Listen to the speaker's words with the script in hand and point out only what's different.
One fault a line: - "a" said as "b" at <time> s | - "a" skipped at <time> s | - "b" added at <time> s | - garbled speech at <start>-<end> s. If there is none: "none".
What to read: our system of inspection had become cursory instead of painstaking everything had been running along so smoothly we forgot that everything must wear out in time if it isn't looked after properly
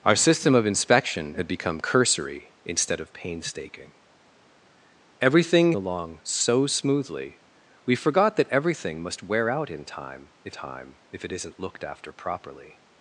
- "had been running" skipped at 5.7 s
- "time if" added at 10.5 s